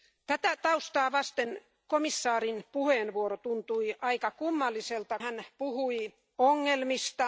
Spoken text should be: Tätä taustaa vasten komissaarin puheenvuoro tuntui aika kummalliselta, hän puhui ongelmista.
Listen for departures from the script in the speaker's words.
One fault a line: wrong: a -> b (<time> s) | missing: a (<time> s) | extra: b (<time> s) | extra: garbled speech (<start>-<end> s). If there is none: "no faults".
no faults